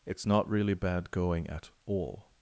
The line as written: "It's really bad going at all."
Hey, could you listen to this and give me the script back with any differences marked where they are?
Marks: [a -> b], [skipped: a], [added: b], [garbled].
"It's [added: not] really bad going at all."